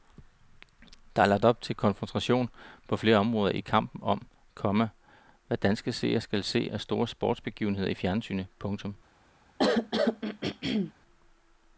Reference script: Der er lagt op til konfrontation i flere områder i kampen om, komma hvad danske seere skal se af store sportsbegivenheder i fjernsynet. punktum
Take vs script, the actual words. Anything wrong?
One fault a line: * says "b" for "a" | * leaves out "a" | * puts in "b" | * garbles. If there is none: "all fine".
* says "på" for "i"